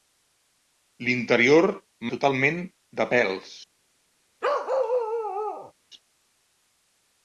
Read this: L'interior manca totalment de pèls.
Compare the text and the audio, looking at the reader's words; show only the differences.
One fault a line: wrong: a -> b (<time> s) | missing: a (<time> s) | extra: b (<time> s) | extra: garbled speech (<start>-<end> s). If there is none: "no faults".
missing: manca (1.7 s)